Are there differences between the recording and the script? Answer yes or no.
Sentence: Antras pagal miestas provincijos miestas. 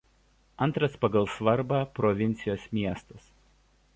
yes